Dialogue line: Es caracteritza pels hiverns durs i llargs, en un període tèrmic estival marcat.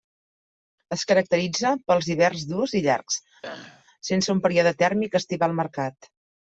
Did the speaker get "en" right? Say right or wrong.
wrong